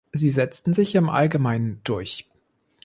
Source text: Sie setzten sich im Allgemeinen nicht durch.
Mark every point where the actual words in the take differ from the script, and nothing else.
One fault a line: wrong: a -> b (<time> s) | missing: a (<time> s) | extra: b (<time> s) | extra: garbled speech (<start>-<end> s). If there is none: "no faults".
missing: nicht (1.8 s)